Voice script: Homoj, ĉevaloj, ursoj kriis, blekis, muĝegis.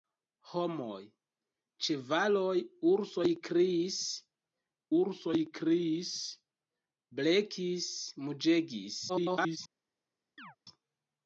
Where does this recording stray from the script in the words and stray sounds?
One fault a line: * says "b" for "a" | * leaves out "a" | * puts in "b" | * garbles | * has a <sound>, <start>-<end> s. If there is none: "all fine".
* puts in "ursoj kriis"
* garbles
* has a chirp, 10.4-10.6 s